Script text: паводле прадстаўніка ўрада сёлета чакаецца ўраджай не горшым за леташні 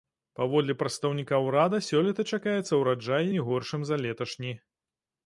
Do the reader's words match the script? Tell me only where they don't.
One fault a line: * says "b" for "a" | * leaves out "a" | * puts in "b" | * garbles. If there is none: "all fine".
all fine